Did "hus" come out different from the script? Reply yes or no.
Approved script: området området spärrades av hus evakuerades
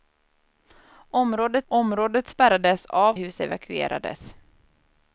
no